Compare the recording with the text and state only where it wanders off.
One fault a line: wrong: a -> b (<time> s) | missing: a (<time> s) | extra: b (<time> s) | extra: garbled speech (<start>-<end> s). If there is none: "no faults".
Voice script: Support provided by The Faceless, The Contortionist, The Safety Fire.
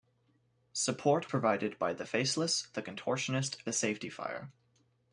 no faults